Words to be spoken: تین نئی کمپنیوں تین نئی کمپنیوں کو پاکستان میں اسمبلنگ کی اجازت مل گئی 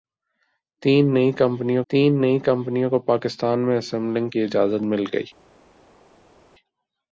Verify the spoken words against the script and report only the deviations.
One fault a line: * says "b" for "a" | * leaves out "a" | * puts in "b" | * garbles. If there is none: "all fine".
all fine